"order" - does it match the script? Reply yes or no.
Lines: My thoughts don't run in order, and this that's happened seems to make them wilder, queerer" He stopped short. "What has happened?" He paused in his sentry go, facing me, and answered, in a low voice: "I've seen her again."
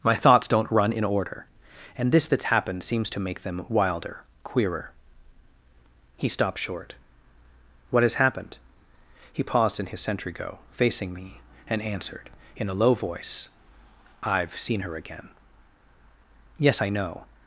yes